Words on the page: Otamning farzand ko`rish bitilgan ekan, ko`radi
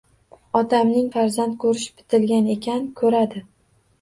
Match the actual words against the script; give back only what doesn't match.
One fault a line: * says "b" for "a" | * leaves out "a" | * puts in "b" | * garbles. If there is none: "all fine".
all fine